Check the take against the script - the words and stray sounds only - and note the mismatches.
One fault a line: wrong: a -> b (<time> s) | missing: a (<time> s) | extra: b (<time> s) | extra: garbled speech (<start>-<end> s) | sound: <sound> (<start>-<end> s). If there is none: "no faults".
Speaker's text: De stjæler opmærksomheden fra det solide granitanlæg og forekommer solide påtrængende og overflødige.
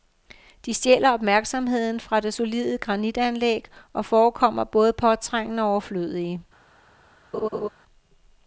wrong: solide -> både (4.6 s)
sound: laugh (7.3-7.7 s)